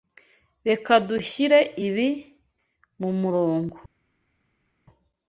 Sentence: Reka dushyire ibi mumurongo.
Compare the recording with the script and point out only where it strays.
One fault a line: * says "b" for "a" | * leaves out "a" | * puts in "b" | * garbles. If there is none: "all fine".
all fine